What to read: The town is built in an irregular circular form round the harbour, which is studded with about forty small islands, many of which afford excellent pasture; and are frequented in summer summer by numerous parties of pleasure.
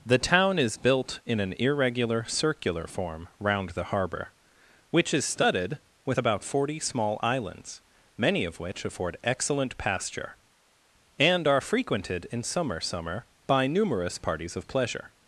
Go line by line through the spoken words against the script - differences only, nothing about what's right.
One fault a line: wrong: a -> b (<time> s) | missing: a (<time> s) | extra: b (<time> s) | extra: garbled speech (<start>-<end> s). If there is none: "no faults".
no faults